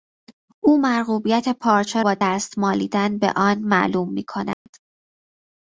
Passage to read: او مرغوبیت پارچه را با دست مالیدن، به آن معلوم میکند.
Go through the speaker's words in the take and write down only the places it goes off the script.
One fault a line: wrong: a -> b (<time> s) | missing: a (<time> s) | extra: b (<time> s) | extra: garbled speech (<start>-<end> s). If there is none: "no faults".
missing: را (2.0 s)